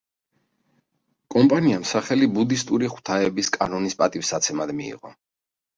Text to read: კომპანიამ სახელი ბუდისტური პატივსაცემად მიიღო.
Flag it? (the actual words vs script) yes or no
yes